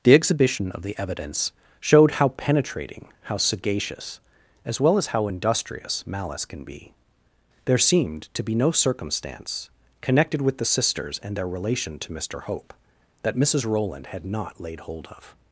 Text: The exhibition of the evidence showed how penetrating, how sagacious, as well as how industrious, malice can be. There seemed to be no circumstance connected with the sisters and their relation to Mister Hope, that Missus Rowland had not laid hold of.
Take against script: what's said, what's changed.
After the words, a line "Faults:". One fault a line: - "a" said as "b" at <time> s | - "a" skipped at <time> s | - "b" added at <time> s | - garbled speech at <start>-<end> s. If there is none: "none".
The exhibition of the evidence showed how penetrating, how sagacious, as well as how industrious, malice can be. There seemed to be no circumstance connected with the sisters and their relation to Mister Hope, that Missus Rowland had not laid hold of.
Faults:
none